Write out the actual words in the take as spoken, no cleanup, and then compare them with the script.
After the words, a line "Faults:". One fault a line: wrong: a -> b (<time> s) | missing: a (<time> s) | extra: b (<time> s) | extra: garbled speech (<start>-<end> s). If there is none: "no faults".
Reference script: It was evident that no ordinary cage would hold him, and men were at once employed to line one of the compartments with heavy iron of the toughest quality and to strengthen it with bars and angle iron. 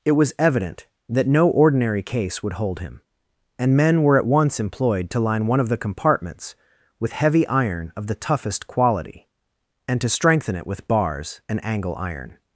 It was evident that no ordinary case would hold him, and men were at once employed to line one of the compartments with heavy iron of the toughest quality and to strengthen it with bars and angle iron.
Faults:
wrong: cage -> case (2.0 s)